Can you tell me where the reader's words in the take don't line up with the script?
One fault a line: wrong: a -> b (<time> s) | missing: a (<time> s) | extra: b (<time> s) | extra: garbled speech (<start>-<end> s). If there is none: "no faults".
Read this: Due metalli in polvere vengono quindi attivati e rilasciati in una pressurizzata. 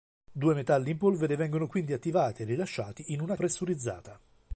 no faults